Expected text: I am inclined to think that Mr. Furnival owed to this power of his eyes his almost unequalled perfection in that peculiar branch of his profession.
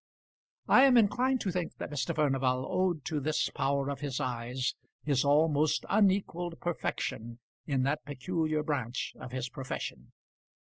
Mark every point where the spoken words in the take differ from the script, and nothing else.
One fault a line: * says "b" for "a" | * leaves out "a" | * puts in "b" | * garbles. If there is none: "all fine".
all fine